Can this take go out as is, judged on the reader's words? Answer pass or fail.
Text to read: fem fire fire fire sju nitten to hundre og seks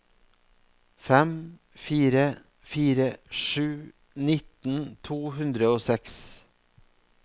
fail